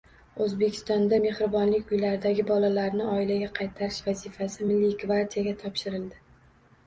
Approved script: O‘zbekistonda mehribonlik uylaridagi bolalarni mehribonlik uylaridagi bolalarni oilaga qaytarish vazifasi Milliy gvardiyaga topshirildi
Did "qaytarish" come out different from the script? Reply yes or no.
no